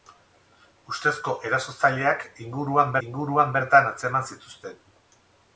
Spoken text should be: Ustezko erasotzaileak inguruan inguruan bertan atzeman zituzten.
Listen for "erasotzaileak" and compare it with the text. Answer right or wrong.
right